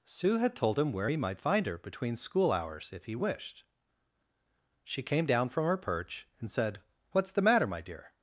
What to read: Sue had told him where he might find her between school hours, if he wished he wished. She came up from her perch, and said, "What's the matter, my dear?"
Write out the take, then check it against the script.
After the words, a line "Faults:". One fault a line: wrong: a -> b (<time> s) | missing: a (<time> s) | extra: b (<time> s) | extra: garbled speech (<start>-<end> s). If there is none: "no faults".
Sue had told him where he might find her between school hours, if he wished. She came down from her perch, and said, "What's the matter, my dear?"
Faults:
missing: he wished (3.6 s)
wrong: up -> down (5.2 s)